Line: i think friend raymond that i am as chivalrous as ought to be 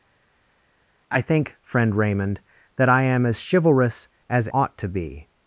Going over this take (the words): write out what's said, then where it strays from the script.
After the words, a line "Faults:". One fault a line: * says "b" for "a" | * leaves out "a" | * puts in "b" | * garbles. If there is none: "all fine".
i think friend raymond that i am as chivalrous as ought to be
Faults:
all fine